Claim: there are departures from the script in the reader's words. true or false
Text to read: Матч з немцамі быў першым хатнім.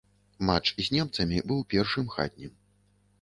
false